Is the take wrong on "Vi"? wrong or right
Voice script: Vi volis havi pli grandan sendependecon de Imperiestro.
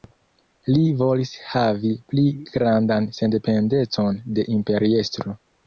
wrong